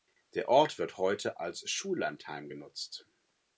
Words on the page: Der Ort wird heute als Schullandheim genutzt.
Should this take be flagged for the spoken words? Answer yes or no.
no